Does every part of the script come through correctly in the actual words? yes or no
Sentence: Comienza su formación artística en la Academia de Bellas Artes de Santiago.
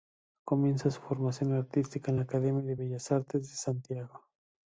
yes